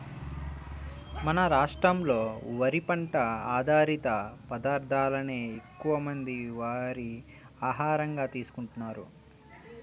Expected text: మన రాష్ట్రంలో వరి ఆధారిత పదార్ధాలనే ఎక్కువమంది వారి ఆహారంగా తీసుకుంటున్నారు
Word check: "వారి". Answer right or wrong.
right